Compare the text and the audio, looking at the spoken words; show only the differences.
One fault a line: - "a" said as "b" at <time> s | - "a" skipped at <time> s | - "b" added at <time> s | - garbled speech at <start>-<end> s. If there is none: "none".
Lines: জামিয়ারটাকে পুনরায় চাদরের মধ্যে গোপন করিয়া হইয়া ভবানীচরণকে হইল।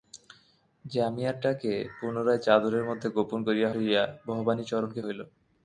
none